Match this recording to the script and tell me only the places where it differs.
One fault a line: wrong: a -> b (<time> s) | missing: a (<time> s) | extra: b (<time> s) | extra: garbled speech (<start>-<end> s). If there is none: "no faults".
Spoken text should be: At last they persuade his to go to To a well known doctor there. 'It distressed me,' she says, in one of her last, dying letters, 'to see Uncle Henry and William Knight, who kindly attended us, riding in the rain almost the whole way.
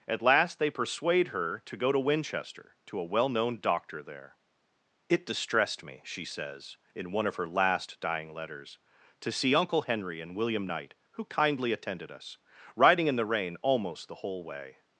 wrong: his -> her (1.3 s)
extra: Winchester (2.0 s)